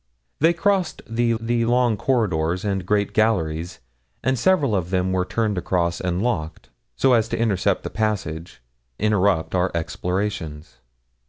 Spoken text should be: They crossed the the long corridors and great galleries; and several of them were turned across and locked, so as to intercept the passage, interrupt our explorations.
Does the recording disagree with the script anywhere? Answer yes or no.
no